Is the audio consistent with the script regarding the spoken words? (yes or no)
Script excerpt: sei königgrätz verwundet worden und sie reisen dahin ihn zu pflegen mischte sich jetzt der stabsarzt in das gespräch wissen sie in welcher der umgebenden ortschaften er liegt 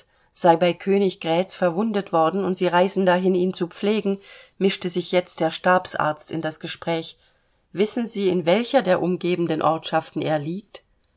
no